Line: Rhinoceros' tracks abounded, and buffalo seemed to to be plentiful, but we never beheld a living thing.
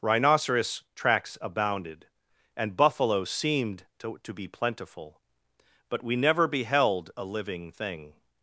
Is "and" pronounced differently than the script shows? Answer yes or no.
no